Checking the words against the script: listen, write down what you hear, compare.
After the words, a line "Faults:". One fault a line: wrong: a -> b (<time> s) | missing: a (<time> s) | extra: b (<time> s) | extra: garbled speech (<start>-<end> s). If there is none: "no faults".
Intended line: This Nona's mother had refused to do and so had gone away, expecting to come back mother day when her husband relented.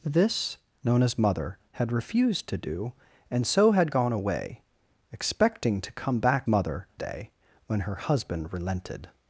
This Nona's mother had refused to do and so had gone away, expecting to come back mother day when her husband relented.
Faults:
no faults